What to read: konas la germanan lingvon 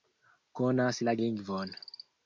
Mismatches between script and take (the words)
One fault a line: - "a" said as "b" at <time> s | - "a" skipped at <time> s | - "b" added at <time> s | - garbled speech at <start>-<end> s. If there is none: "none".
- "germanan" skipped at 1.1 s